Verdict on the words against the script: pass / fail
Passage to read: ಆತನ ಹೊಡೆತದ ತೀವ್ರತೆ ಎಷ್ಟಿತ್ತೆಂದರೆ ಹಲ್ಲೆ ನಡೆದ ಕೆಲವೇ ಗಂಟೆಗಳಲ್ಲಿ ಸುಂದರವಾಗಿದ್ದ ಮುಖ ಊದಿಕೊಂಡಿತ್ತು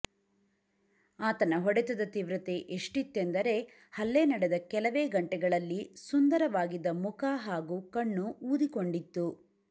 fail